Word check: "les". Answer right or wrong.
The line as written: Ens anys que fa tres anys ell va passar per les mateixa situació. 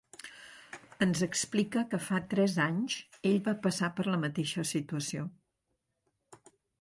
wrong